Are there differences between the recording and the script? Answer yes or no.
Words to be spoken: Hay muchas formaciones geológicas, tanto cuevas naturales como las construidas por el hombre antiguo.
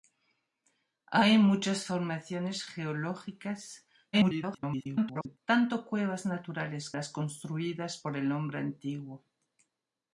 yes